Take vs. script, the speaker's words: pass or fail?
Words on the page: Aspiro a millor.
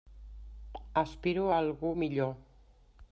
fail